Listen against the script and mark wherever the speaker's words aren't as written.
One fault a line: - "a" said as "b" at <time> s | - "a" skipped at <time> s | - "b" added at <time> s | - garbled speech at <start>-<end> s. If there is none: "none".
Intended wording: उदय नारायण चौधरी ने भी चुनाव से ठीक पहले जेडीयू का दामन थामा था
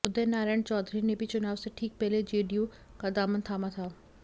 none